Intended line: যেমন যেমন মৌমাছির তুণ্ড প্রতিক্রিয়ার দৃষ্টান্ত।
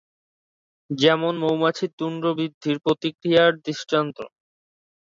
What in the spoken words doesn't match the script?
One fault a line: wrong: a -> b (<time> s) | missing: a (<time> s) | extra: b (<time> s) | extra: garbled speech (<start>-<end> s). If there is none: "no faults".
missing: যেমন (1.3 s)
extra: বৃদ্ধির (2.4 s)